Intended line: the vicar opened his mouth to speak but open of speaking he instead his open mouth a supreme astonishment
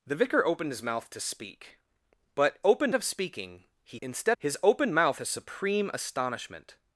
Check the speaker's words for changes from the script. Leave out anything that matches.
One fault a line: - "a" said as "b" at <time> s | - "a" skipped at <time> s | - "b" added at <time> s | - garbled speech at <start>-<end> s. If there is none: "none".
none